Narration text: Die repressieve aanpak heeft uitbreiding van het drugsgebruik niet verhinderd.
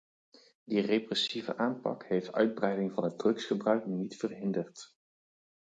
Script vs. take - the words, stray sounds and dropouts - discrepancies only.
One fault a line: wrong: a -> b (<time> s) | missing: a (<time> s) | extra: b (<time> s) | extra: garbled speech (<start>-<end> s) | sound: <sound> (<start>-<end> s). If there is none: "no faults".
no faults